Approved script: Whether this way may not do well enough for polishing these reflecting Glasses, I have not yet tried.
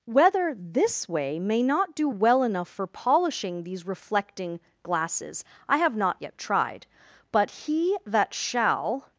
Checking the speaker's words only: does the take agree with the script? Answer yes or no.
no